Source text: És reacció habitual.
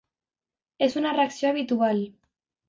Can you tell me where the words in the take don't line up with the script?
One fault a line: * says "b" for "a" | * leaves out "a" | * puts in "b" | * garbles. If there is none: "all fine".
* puts in "una"